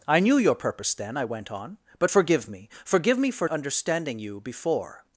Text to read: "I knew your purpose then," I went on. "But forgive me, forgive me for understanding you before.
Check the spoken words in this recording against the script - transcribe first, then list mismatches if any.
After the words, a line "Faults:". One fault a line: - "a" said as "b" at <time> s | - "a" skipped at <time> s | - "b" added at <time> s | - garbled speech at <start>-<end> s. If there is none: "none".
"I knew your purpose then," I went on. "But forgive me, forgive me for understanding you before.
Faults:
none